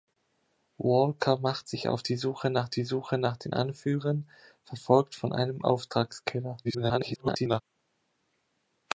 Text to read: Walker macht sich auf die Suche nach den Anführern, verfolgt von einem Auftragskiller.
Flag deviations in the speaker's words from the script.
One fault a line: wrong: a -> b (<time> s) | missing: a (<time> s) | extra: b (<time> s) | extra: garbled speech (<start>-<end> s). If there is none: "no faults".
extra: die Suche nach (2.7 s)
extra: garbled speech (6.6-7.6 s)